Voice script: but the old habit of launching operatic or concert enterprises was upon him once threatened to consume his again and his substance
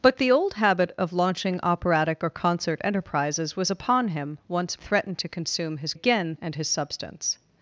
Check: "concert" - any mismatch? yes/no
no